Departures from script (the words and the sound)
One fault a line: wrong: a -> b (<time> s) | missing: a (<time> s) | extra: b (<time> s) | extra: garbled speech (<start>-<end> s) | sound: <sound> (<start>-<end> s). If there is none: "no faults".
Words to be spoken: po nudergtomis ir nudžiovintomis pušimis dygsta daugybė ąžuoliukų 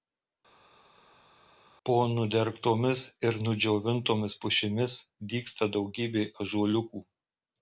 no faults